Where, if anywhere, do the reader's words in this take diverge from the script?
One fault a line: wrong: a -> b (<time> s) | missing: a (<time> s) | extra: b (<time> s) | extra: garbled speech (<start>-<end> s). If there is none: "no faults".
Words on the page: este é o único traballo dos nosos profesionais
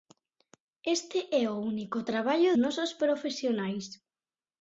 missing: dos (2.5 s)